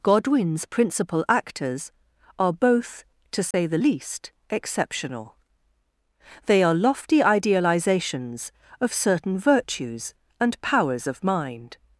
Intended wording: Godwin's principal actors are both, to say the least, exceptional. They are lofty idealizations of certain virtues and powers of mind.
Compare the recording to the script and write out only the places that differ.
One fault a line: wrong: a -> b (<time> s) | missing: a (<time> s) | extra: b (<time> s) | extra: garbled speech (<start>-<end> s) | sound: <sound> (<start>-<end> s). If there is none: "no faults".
sound: dropout (3.5-3.5 s)